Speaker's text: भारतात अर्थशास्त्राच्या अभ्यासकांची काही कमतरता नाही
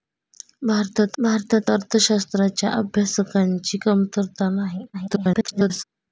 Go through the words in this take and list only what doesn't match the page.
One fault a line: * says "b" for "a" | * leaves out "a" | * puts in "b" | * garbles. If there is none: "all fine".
* puts in "भारतात"
* leaves out "काही"
* garbles